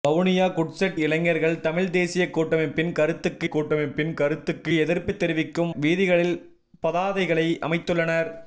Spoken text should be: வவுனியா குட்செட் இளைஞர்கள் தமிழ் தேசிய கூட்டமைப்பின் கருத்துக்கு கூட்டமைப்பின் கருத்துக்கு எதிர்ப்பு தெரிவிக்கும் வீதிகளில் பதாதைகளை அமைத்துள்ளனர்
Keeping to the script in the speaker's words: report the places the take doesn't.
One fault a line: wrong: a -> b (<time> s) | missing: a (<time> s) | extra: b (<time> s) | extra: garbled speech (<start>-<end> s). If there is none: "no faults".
no faults